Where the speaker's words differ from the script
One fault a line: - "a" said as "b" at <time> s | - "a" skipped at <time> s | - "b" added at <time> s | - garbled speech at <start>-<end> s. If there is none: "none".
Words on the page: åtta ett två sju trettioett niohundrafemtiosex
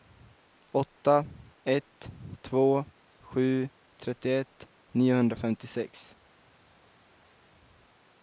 none